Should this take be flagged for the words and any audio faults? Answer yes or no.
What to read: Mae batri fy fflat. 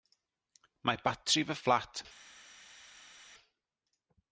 no